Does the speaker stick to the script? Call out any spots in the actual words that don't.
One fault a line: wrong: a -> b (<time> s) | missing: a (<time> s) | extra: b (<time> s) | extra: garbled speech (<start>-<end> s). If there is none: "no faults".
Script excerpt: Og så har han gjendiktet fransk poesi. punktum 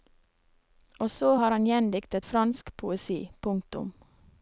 no faults